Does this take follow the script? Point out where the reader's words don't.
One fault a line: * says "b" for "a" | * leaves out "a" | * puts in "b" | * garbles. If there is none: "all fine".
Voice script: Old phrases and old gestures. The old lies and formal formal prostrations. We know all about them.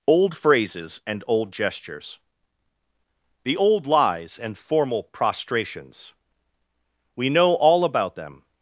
* leaves out "formal"